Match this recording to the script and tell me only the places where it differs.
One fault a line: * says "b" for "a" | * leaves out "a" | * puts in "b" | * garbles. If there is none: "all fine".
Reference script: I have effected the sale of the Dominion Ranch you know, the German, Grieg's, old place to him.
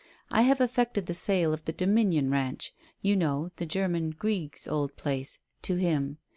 all fine